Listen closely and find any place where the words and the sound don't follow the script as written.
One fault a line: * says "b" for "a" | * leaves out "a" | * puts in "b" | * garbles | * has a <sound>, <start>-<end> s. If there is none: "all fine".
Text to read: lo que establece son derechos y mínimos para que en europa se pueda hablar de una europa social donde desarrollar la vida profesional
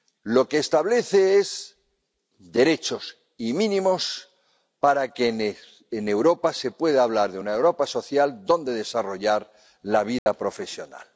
* has a dropout, 10.2-10.3 s